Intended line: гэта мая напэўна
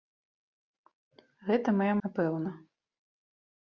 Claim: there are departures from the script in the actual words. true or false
false